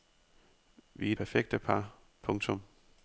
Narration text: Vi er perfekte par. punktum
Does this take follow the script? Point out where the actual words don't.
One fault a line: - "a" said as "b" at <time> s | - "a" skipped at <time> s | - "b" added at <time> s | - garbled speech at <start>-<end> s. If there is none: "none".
none